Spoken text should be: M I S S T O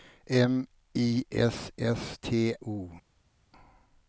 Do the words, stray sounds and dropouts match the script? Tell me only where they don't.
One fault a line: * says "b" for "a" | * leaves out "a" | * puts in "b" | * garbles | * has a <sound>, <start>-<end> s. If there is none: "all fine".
all fine